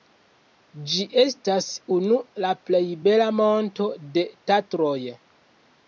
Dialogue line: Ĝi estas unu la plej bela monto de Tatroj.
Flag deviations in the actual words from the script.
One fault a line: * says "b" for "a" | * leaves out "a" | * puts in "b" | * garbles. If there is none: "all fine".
all fine